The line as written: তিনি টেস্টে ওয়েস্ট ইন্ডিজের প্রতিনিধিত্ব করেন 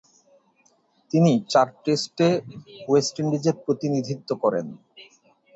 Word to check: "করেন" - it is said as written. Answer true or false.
true